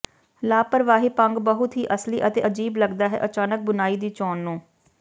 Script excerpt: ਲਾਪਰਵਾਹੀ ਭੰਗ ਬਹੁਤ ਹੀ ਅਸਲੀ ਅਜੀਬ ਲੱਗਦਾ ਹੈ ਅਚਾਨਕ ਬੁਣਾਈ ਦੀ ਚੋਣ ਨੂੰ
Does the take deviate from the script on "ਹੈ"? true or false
false